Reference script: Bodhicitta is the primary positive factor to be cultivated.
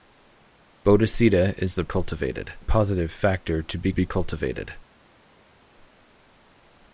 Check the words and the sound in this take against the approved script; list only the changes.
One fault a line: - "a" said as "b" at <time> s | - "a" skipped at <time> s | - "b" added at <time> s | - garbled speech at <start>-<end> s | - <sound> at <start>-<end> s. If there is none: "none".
- "primary" said as "cultivated" at 1.8 s
- "be" added at 3.9 s